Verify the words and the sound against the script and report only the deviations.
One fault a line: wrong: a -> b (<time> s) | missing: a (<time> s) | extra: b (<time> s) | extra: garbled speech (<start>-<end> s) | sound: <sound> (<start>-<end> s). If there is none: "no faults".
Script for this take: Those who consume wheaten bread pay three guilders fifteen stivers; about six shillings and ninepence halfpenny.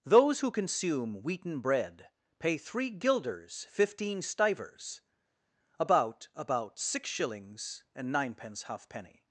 extra: about (6.3 s)